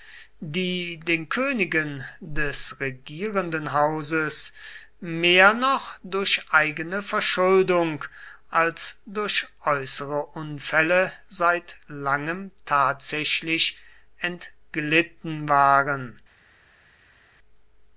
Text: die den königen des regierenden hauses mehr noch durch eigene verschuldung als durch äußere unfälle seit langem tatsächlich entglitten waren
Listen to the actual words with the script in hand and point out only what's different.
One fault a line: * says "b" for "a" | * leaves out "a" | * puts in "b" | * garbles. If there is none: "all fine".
all fine